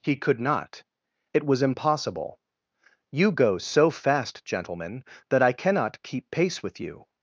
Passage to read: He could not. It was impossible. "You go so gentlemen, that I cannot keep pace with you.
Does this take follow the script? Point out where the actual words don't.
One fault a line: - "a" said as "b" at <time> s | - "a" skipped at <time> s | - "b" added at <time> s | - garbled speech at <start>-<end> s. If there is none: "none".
- "fast" added at 3.9 s